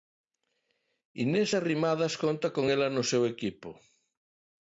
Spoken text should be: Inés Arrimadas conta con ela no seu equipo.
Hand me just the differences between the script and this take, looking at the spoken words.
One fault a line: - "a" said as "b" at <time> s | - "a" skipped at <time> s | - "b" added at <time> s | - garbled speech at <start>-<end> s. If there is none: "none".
none